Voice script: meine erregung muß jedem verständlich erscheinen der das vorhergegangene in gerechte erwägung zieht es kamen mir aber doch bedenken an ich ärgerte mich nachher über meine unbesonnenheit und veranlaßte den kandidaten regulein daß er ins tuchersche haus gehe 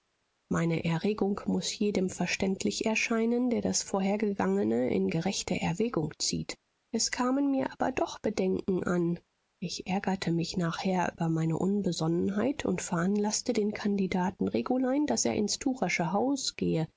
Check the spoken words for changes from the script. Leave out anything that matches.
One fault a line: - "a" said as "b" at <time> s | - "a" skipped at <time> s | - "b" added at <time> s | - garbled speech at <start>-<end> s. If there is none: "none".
none